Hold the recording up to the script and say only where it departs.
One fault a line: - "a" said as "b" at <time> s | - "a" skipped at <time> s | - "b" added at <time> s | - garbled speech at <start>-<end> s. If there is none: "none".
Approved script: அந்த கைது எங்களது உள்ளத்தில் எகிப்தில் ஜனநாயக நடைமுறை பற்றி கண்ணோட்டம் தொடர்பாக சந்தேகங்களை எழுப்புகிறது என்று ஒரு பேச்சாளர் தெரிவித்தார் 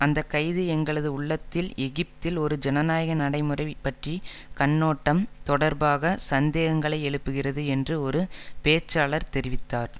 - "ஒரு" added at 2.4 s